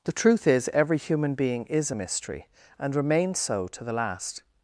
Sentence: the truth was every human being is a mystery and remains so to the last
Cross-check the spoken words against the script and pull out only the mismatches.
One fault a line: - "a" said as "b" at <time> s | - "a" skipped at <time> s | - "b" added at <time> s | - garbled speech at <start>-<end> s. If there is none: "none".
- "was" said as "is" at 0.5 s